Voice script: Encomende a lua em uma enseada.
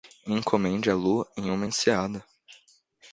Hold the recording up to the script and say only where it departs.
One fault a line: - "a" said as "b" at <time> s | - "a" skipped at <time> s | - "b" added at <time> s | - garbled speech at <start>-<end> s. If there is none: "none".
none